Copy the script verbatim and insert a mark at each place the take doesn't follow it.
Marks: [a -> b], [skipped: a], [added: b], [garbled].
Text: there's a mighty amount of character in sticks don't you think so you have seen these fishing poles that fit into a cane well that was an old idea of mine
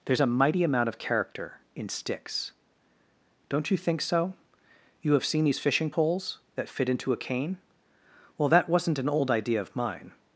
there's a mighty amount of character in sticks don't you think so you have seen these fishing poles that fit into a cane well that [was -> wasn't] an old idea of mine